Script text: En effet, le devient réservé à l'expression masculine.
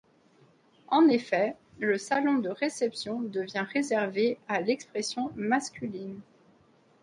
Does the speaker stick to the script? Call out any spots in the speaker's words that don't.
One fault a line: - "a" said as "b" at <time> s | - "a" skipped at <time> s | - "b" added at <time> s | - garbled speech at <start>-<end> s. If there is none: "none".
- "salon de réception" added at 2.0 s